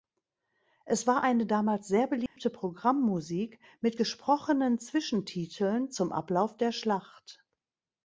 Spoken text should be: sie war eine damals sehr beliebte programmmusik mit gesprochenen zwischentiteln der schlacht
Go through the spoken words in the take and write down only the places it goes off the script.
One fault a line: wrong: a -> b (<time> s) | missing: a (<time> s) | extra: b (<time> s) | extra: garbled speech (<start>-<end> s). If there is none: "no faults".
wrong: sie -> es (0.8 s)
extra: zum ablauf (5.9 s)